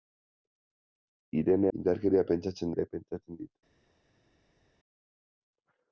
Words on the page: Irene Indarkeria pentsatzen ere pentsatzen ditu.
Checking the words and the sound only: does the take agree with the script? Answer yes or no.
yes